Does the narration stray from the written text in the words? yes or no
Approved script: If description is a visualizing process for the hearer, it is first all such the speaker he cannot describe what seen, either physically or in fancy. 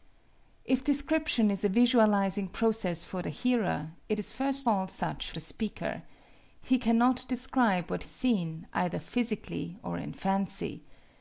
no